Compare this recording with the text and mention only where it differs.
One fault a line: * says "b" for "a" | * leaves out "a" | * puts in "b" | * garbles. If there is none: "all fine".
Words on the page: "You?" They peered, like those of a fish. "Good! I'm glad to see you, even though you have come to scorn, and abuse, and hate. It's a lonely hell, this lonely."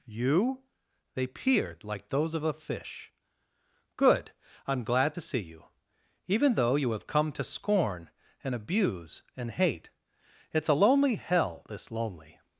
all fine